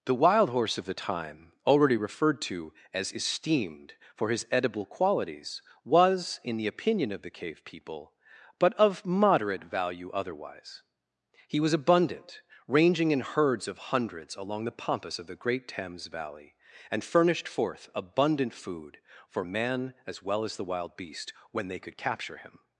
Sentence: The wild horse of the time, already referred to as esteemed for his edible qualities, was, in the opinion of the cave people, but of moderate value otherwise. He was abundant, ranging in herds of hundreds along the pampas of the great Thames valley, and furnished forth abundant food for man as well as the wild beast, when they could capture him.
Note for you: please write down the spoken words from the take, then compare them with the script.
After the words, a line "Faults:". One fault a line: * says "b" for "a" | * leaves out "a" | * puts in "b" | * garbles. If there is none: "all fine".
The wild horse of the time, already referred to as esteemed for his edible qualities, was, in the opinion of the cave people, but of moderate value otherwise. He was abundant, ranging in herds of hundreds along the pampas of the great Thames valley, and furnished forth abundant food for man as well as the wild beast, when they could capture him.
Faults:
all fine